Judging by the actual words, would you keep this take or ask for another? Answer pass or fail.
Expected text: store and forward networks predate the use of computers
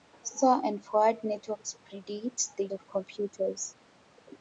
fail